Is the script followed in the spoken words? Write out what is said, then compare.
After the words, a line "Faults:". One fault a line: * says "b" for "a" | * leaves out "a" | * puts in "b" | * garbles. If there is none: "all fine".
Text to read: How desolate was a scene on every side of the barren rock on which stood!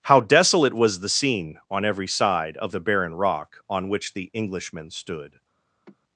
How desolate was the scene on every side of the barren rock on which the Englishmen stood!
Faults:
* says "the" for "a"
* puts in "the Englishmen"